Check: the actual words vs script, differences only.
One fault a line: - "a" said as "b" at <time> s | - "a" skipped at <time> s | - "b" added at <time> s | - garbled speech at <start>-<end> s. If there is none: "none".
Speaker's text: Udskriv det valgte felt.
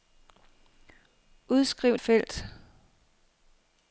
- "det valgte" skipped at 2.0 s